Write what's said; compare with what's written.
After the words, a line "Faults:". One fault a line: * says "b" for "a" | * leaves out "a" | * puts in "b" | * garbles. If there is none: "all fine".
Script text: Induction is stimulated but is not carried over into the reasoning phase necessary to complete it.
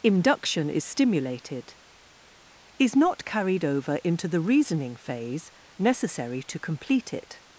Induction is stimulated is not carried over into the reasoning phase necessary to complete it.
Faults:
* leaves out "but"